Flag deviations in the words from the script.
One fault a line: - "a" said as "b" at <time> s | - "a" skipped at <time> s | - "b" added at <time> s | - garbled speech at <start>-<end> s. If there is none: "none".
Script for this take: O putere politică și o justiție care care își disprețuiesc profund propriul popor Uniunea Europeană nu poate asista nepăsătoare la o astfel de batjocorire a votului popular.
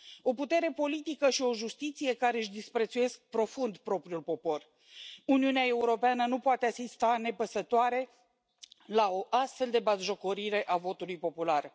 - "care" skipped at 2.4 s